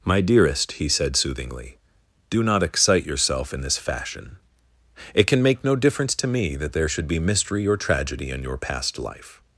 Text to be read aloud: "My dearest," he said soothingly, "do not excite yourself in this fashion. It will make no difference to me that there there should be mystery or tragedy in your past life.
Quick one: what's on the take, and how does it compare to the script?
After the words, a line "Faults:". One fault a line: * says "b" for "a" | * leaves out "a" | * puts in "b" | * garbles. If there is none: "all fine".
"My dearest," he said soothingly, "do not excite yourself in this fashion. It can make no difference to me that there should be mystery or tragedy in your past life.
Faults:
* says "can" for "will"
* leaves out "there"